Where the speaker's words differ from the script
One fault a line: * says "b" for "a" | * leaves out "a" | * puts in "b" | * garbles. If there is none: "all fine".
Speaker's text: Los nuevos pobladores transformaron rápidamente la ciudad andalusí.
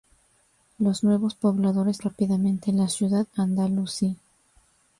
* leaves out "transformaron"